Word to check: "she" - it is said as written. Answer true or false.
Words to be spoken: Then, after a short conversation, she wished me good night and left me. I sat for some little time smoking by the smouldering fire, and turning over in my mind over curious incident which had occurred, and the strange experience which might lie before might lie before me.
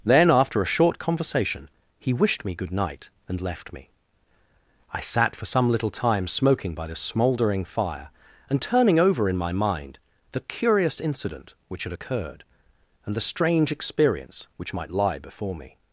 false